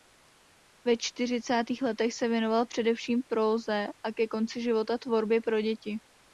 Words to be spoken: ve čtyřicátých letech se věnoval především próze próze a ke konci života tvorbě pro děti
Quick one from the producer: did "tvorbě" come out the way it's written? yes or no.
yes